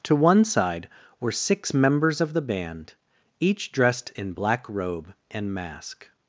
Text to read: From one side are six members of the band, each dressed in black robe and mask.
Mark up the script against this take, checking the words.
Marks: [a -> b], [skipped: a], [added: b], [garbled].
[From -> To] one side [are -> were] six members of the band, each dressed in black robe and mask.